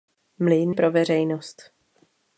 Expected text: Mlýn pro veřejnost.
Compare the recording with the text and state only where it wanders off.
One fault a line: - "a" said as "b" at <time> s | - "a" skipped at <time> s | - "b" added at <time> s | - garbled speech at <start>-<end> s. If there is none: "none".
none